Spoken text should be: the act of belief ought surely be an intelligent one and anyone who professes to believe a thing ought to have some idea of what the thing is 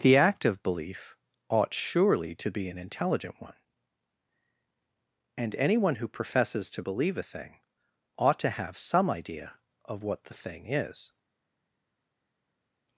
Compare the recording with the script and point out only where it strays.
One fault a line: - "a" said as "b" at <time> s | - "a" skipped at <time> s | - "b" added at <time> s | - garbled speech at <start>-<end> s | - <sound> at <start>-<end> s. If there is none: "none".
- "to" added at 2.3 s